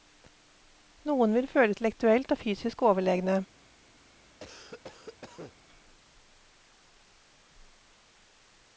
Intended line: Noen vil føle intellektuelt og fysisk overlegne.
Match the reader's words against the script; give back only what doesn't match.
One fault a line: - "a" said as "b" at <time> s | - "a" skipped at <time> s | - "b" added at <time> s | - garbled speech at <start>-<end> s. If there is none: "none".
none